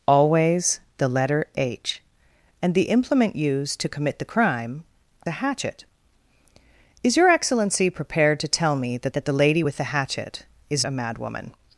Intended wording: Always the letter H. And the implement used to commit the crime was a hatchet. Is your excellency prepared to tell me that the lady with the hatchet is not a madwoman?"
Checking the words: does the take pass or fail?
fail